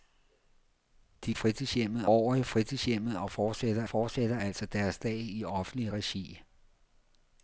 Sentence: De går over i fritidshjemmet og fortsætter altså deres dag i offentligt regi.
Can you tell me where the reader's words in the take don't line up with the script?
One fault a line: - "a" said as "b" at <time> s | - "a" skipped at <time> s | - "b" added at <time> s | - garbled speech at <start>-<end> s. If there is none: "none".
- "går" said as "fritidshjemmet" at 1.3 s
- "fortsætter" added at 3.9 s